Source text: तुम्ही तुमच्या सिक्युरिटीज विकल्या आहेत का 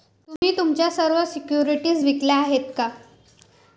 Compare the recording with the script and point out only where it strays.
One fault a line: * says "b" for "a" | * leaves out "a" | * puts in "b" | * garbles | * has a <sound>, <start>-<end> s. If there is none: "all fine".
* has a dropout, 0.4-0.4 s
* puts in "सर्व"